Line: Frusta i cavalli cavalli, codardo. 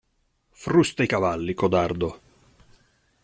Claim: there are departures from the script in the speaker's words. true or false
true